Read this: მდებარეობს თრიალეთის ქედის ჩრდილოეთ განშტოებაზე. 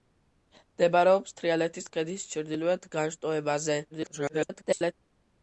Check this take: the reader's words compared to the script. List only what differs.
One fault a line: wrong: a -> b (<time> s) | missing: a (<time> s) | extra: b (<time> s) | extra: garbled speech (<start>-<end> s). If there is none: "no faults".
extra: garbled speech (3.9-4.9 s)